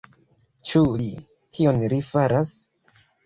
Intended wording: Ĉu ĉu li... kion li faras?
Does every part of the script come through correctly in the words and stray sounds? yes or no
no